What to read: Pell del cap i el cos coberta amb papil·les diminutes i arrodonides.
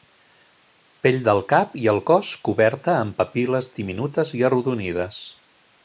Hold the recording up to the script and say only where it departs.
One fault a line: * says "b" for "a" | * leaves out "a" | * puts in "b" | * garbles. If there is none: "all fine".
all fine